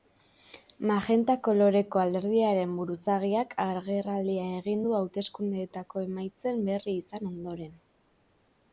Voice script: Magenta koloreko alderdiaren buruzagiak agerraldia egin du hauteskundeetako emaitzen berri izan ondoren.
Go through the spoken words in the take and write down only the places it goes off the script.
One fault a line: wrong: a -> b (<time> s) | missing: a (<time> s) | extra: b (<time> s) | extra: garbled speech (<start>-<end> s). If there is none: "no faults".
no faults